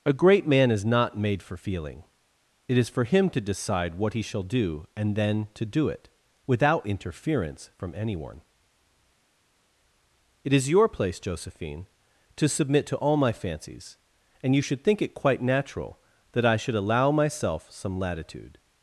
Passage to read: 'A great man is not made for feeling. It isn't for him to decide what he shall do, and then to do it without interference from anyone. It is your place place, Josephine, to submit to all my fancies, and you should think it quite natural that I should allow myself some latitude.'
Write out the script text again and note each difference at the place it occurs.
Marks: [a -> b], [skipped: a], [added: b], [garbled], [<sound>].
'A great man is not made for feeling. It [isn't -> is] for him to decide what he shall do, and then to do it without interference from anyone. It is your place [skipped: place,] Josephine, to submit to all my fancies, and you should think it quite natural that I should allow myself some latitude.'